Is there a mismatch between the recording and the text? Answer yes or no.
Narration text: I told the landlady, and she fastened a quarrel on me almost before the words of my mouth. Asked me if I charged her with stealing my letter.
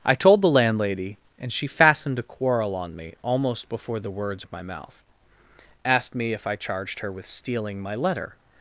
no